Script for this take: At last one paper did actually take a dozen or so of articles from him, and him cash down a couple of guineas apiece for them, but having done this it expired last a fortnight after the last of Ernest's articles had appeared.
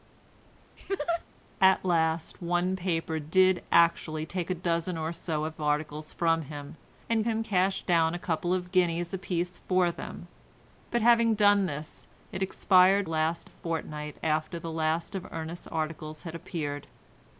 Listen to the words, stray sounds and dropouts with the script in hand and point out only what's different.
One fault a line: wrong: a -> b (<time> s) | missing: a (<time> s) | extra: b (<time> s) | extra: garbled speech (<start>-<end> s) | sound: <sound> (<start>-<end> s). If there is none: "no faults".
sound: laugh (0.8-1.2 s)